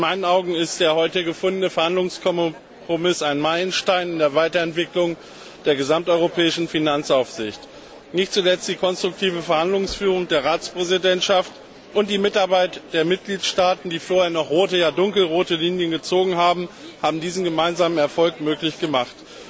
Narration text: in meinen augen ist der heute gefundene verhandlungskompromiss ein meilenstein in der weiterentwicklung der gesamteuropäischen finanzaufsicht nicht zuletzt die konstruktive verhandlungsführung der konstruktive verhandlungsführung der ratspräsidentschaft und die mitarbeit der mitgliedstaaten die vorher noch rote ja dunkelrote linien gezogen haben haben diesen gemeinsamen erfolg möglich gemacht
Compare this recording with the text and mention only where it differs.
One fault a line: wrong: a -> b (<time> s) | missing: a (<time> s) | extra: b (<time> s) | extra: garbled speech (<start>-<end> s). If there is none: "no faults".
missing: konstruktive verhandlungsführung der (10.4 s)